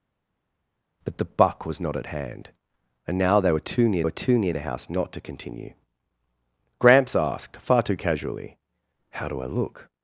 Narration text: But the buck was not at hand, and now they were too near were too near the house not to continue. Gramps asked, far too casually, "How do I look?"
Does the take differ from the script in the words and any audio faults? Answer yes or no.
no